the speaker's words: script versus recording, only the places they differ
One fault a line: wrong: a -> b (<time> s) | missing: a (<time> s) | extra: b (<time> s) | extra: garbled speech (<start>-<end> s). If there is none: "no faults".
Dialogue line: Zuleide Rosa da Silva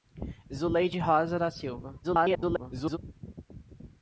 extra: garbled speech (2.0-3.0 s)